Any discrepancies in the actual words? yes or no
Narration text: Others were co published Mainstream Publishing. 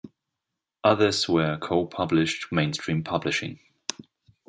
no